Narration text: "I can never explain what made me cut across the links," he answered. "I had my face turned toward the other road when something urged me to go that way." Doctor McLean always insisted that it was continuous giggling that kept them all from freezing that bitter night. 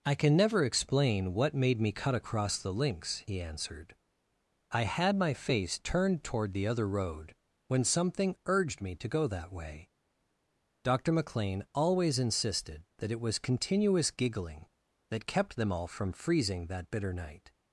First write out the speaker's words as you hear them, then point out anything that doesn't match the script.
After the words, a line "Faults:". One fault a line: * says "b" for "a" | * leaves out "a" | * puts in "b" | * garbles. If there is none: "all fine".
"I can never explain what made me cut across the links," he answered. "I had my face turned toward the other road when something urged me to go that way." Doctor McLean always insisted that it was continuous giggling that kept them all from freezing that bitter night.
Faults:
all fine